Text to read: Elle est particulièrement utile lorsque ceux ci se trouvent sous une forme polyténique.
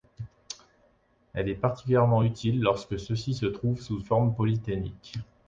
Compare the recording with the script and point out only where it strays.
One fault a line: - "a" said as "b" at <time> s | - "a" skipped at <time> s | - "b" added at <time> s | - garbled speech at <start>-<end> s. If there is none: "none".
- "une" skipped at 4.0 s